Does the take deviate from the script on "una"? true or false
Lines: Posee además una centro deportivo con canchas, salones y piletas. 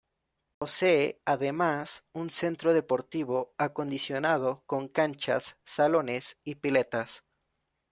true